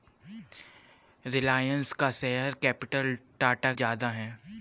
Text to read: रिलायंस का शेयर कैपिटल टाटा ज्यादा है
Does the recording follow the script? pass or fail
pass